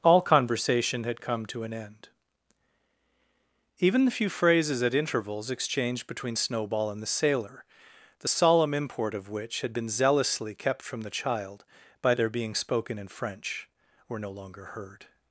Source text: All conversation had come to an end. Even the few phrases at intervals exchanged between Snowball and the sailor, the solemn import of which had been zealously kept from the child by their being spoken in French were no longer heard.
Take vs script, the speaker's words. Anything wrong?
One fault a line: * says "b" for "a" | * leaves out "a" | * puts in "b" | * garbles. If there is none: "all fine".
all fine